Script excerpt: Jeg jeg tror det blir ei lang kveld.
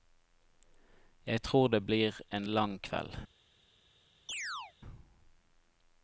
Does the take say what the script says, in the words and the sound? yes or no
no